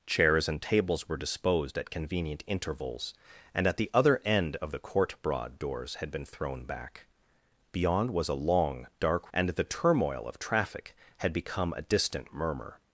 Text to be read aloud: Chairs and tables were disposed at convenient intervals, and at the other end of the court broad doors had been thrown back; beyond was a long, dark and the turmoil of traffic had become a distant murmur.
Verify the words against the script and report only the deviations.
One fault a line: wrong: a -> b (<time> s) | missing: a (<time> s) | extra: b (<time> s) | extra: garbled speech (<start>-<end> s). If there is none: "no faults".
no faults